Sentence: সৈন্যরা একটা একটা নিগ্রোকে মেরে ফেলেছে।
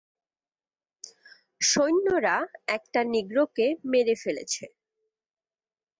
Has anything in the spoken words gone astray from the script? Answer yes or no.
yes